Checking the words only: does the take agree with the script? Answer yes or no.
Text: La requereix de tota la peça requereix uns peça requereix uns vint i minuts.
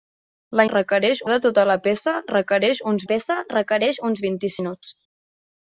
yes